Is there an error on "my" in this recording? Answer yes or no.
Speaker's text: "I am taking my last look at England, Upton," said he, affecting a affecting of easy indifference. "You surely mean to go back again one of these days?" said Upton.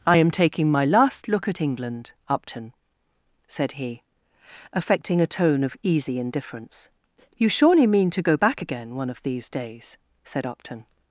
no